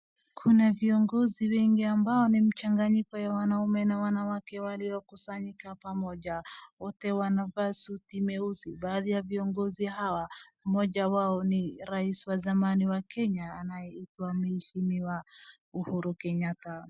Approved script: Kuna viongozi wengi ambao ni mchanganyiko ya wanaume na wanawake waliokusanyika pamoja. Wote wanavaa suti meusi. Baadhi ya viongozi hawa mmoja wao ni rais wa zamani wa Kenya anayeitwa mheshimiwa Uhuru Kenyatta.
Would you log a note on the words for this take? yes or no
no